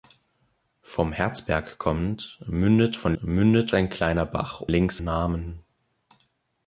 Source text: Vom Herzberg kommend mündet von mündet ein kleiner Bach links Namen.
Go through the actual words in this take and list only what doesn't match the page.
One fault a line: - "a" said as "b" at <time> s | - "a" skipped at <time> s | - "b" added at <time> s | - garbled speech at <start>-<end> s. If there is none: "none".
none